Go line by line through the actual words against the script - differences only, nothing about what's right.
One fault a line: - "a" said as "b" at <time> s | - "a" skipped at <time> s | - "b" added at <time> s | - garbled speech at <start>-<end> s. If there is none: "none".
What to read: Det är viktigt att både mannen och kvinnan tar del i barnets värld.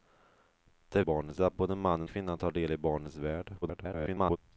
- "viktigt" said as "barnets" at 1.0 s
- "och" skipped at 2.1 s
- garbled speech at 3.6-4.4 s